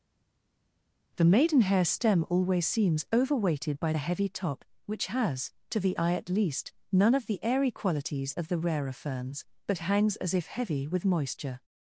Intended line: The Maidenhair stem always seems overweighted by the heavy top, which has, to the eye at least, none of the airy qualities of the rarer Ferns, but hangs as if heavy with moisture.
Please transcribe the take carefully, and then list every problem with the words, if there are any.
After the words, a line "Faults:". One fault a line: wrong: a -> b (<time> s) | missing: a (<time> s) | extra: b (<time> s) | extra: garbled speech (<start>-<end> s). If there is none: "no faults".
The Maidenhair stem always seems overweighted by the heavy top, which has, to the eye at least, none of the airy qualities of the rarer Ferns, but hangs as if heavy with moisture.
Faults:
no faults